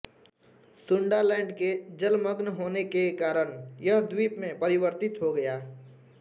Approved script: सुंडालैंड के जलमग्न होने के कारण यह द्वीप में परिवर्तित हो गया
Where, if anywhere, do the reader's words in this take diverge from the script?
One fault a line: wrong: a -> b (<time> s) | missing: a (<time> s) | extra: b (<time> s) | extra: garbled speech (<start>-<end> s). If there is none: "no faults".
no faults